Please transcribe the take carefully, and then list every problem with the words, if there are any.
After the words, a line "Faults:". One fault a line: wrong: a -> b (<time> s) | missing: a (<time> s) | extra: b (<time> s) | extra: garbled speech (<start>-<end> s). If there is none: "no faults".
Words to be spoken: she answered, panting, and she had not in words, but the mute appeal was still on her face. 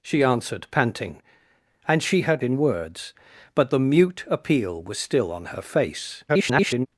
she answered, panting, and she had in words, but the mute appeal was still on her face. [garbled]
Faults:
missing: not (2.4 s)
extra: garbled speech (6.3-6.9 s)